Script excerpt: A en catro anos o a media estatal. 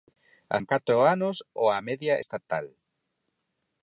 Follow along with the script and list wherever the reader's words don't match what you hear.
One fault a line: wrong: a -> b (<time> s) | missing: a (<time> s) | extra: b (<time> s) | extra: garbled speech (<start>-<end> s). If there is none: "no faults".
no faults